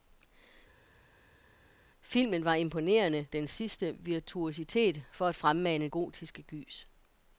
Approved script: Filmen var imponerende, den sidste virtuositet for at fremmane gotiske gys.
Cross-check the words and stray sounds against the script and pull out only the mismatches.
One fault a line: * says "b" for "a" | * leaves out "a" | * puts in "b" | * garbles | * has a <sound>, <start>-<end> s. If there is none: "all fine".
all fine